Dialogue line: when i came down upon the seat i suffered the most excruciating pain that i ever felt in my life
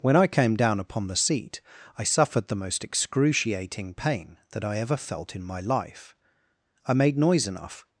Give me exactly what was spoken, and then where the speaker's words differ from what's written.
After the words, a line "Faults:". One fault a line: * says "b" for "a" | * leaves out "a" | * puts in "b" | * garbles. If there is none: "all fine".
when i came down upon the seat i suffered the most excruciating pain that i ever felt in my life i made noise enough
Faults:
* puts in "i made noise enough"